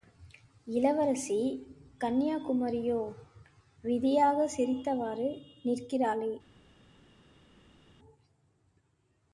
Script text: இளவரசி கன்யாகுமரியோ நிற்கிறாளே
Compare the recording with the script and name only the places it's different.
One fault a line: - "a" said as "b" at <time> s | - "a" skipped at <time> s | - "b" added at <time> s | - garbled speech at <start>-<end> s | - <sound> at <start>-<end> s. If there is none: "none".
- "விதியாகச் சிரித்தவாறு" added at 3.8 s